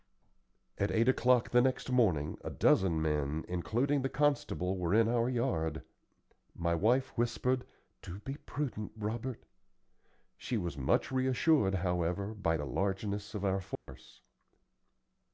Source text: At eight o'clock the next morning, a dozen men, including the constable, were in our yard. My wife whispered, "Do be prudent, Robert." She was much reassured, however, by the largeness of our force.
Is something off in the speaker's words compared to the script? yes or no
no